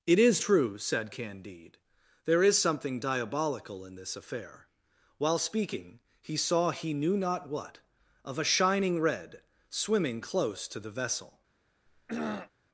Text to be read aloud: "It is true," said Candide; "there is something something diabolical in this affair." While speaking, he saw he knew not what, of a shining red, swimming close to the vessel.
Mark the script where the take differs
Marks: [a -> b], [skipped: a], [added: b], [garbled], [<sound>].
"It is true," said Candide; "there is something [skipped: something] diabolical in this affair." While speaking, he saw he knew not what, of a shining red, swimming close to the vessel. [throat clearing]